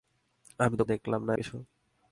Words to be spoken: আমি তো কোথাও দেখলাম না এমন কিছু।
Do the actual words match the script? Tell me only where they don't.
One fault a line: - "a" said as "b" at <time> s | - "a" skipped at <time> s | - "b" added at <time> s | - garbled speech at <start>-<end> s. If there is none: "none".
- "কোথাও" skipped at 0.8 s
- "এমন" skipped at 1.3 s